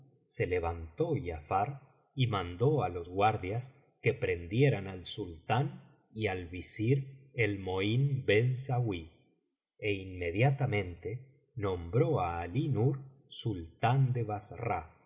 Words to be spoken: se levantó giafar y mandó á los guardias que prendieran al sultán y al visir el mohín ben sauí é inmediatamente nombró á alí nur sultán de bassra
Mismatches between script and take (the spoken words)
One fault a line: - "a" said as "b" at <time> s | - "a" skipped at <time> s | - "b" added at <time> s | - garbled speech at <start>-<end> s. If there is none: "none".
none